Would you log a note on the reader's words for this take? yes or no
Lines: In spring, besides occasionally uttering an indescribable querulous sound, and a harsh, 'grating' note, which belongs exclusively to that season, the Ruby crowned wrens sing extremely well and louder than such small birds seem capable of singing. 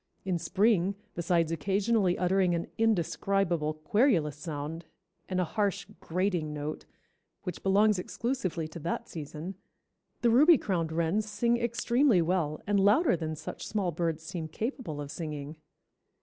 no